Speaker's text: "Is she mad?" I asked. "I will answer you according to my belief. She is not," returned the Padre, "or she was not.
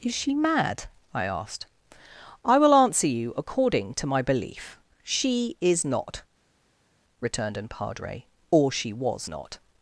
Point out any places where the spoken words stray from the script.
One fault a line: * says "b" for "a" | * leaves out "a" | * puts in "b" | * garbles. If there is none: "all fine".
* says "an" for "the"